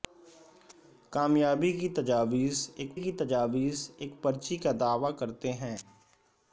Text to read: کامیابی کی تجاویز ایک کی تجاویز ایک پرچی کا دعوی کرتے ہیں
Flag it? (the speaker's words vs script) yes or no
no